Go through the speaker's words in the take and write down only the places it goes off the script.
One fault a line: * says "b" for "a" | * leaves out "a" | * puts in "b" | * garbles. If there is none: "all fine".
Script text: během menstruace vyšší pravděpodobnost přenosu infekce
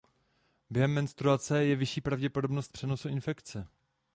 * puts in "je"